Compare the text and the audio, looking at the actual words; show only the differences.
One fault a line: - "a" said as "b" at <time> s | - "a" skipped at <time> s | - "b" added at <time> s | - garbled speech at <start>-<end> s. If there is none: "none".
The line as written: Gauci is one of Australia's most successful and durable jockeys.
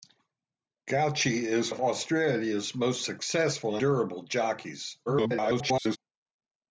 - "one" skipped at 1.7 s
- "and" skipped at 3.8 s
- garbled speech at 5.1-6.0 s